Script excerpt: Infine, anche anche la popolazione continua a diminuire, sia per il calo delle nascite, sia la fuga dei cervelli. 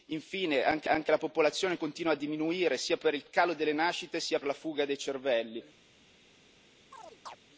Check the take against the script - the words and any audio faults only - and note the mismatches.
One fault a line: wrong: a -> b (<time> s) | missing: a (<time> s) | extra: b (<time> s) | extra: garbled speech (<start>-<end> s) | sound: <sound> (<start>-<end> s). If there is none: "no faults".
sound: chirp (6.9-7.4 s)